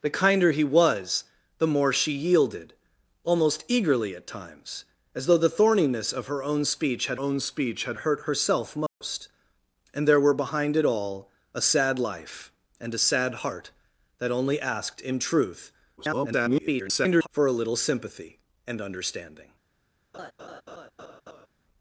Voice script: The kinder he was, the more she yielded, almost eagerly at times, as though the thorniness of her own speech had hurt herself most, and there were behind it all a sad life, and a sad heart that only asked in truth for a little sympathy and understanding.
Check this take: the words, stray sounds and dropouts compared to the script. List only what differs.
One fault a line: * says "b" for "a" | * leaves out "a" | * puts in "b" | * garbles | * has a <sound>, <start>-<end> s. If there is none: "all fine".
* puts in "own speech had"
* has a dropout, 8.9-9.0 s
* garbles
* has a laugh, 20.1-21.5 s